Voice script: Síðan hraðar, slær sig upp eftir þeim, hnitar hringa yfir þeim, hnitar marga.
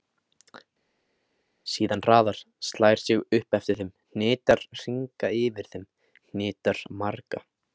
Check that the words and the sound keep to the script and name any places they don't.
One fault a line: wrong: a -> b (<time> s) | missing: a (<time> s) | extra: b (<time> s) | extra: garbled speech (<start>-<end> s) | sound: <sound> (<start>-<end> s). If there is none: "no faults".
no faults